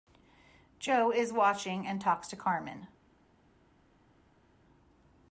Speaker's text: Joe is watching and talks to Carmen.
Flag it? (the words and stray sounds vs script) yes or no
no